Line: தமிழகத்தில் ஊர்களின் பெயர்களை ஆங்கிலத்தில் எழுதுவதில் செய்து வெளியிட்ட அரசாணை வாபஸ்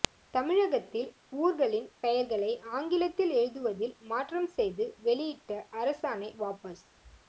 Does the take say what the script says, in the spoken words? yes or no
no